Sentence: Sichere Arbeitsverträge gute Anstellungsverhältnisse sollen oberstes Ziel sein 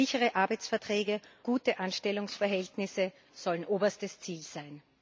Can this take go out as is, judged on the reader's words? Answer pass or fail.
pass